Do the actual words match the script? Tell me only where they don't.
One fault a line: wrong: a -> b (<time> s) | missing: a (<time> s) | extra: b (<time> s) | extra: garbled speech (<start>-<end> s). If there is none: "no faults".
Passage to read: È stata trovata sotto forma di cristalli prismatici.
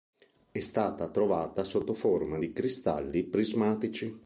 no faults